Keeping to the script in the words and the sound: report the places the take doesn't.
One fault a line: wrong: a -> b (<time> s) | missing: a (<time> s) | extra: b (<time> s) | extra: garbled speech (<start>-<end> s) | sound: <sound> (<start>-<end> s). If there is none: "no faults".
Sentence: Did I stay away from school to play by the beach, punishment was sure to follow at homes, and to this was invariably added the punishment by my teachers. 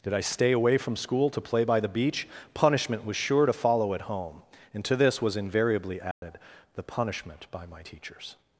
wrong: homes -> home (4.0 s)
sound: dropout (6.1-6.2 s)